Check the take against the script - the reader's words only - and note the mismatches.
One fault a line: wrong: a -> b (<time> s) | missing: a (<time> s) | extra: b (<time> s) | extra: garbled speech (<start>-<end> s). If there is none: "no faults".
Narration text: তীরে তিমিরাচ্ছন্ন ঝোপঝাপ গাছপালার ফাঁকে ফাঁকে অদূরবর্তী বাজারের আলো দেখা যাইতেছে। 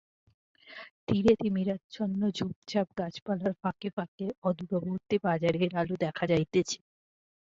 no faults